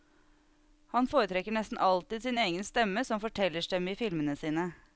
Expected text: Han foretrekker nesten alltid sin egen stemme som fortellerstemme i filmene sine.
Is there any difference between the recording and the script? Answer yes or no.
no